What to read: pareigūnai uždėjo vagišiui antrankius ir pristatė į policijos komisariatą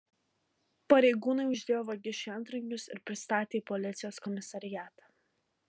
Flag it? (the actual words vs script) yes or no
no